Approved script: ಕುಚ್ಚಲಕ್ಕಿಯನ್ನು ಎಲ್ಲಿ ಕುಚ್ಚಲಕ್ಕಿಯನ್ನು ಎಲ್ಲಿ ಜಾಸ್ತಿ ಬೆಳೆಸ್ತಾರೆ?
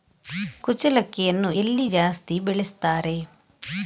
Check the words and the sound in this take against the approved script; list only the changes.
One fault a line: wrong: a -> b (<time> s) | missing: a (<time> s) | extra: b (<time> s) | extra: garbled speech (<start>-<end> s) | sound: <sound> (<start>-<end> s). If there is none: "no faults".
missing: ಕುಚ್ಚಲಕ್ಕಿಯನ್ನು ಎಲ್ಲಿ (1.9 s)